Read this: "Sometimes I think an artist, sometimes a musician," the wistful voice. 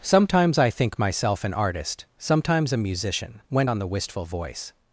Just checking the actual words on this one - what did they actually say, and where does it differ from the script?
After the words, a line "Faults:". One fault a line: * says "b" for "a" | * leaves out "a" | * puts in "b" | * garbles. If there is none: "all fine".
"Sometimes I think myself an artist, sometimes a musician," went on the wistful voice.
Faults:
* puts in "myself"
* puts in "went on"